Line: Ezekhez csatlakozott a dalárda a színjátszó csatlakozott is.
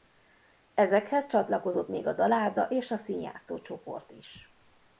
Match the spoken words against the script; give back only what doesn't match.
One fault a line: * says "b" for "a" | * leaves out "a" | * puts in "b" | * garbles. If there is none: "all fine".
* puts in "még"
* puts in "és"
* says "csoport" for "csatlakozott"